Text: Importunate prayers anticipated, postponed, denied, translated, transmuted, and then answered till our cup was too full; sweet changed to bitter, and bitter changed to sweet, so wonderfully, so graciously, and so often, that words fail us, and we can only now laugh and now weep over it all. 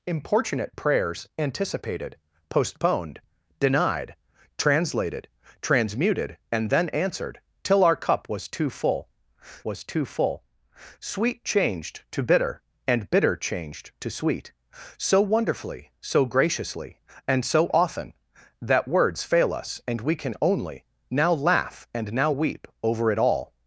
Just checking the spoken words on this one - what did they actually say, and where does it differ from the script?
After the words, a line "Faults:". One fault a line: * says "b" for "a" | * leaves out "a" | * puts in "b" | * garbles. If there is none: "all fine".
Importunate prayers anticipated, postponed, denied, translated, transmuted, and then answered till our cup was too full was too full; sweet changed to bitter, and bitter changed to sweet, so wonderfully, so graciously, and so often, that words fail us, and we can only now laugh and now weep over it all.
Faults:
* puts in "was too full"